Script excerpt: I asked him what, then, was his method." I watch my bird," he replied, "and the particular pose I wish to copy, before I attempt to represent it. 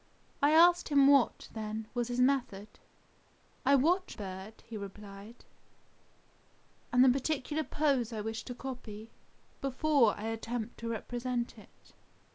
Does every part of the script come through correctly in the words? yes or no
no